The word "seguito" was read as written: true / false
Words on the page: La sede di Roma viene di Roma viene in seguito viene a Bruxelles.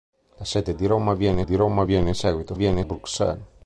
true